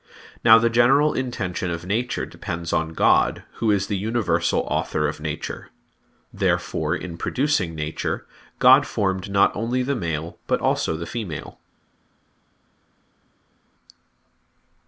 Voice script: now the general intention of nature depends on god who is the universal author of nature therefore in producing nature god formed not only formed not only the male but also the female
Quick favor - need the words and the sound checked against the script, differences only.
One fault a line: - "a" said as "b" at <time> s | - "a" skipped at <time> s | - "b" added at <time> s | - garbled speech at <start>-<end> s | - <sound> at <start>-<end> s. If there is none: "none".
- "formed not only" skipped at 9.8 s